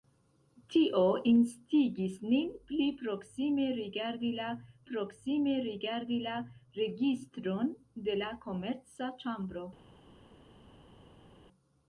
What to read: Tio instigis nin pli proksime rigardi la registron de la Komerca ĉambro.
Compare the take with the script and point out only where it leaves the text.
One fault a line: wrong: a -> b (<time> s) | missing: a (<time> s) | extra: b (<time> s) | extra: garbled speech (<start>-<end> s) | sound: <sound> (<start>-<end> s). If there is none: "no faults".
extra: proksime rigardi la (4.9 s)